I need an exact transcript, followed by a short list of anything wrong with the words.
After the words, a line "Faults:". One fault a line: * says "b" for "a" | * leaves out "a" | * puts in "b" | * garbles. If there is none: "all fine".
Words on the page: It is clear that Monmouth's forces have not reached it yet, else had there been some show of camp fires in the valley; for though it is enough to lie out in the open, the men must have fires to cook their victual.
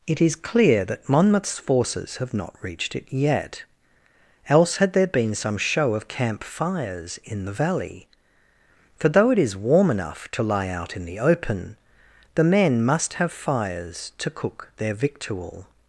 It is clear that Monmouth's forces have not reached it yet, else had there been some show of camp fires in the valley; for though it is warm enough to lie out in the open, the men must have fires to cook their victual.
Faults:
* puts in "warm"